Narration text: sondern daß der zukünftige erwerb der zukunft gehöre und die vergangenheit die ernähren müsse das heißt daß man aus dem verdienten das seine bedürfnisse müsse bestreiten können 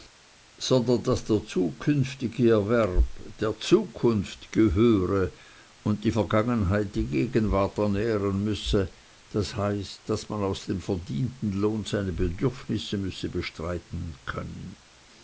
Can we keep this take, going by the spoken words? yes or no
no